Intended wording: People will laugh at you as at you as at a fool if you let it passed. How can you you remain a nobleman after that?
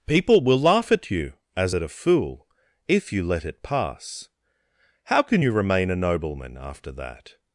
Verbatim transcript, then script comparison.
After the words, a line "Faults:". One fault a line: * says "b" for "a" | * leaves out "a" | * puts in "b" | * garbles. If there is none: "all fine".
People will laugh at you as at a fool if you let it pass. How can you remain a nobleman after that?
Faults:
* leaves out "you as at"
* says "pass" for "passed"
* leaves out "you"